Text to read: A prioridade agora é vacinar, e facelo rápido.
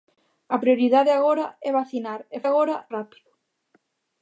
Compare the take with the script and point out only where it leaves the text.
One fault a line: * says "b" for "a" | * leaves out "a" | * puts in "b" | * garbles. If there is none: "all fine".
* says "agora" for "facelo"